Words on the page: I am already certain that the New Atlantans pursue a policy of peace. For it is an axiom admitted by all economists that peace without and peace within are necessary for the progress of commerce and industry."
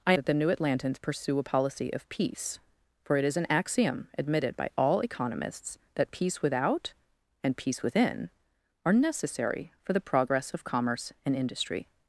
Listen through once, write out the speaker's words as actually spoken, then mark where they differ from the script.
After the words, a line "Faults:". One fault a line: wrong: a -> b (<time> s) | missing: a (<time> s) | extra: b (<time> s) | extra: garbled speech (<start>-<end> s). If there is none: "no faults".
I that the New Atlantans pursue a policy of peace. For it is an axiom admitted by all economists that peace without and peace within are necessary for the progress of commerce and industry."
Faults:
missing: am already certain (0.1 s)